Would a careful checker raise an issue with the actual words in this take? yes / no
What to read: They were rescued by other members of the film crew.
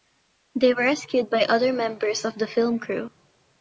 no